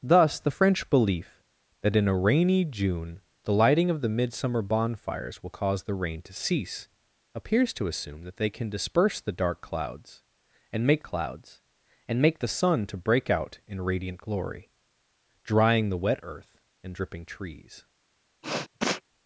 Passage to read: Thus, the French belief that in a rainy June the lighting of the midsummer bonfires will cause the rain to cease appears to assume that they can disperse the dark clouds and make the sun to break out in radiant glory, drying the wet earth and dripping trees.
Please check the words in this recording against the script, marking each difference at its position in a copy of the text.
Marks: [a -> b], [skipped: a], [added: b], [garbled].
Thus, the French belief that in a rainy June the lighting of the midsummer bonfires will cause the rain to cease appears to assume that they can disperse the dark clouds and make [added: clouds and make] the sun to break out in radiant glory, drying the wet earth and dripping trees.